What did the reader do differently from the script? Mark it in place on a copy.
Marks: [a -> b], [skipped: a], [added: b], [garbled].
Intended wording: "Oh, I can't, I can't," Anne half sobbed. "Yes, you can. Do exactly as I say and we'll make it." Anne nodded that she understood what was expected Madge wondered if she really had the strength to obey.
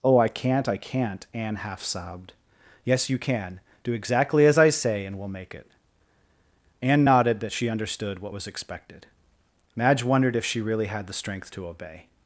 "Oh, I can't, I can't," Anne half sobbed. "Yes, you can. Do exactly as I say and we'll make it." Anne nodded that she understood what was expected Madge wondered if she really had the strength to obey.